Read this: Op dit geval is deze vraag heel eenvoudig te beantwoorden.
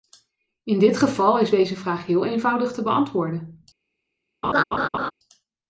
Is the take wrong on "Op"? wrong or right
wrong